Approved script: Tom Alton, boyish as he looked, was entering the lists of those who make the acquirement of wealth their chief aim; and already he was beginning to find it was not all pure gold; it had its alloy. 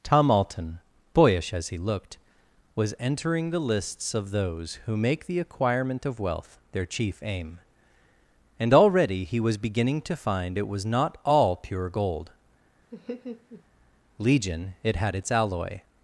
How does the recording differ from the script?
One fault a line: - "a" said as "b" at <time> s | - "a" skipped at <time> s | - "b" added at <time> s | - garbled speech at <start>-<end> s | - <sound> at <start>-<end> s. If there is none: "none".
- laugh at 12.9-13.6 s
- "legion" added at 14.2 s